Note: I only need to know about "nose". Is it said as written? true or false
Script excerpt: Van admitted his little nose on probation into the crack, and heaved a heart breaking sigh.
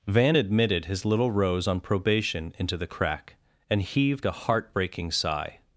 false